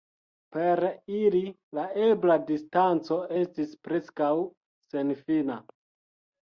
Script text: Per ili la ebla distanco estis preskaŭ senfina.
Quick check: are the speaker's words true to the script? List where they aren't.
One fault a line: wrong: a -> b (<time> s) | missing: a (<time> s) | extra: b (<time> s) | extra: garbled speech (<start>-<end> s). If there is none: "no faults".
no faults